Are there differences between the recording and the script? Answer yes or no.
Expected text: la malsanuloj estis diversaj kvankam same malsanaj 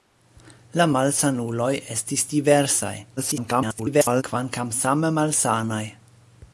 yes